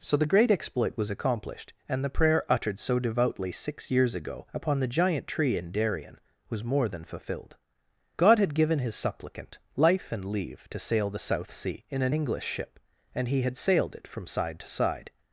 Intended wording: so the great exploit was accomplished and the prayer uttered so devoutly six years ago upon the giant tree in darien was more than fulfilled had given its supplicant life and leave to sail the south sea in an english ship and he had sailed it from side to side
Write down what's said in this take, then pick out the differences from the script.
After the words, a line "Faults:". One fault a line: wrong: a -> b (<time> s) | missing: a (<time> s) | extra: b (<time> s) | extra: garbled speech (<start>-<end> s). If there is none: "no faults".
so the great exploit was accomplished and the prayer uttered so devoutly six years ago upon the giant tree in darien was more than fulfilled god had given his supplicant life and leave to sail the south sea in an english ship and he had sailed it from side to side
Faults:
extra: god (8.2 s)
wrong: its -> his (8.8 s)